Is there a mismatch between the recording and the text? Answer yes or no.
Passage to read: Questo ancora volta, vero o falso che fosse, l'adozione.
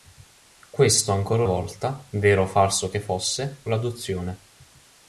no